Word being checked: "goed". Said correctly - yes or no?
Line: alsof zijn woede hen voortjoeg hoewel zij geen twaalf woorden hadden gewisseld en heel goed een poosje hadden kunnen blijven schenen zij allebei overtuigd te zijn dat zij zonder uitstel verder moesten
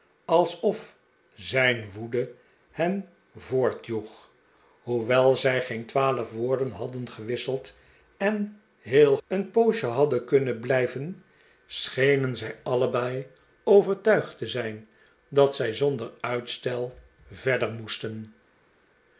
no